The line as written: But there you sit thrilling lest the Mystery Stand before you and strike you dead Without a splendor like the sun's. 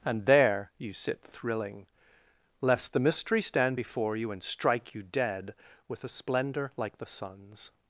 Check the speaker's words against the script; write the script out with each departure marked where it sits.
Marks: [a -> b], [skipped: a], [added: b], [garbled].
[But -> And] there you sit thrilling lest the Mystery Stand before you and strike you dead [Without -> With] a splendor like the sun's.